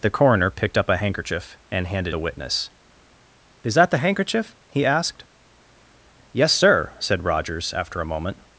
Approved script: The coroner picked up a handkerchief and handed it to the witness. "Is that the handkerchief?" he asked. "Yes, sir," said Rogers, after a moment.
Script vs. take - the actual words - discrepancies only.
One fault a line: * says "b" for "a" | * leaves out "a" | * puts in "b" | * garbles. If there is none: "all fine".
* leaves out "it to"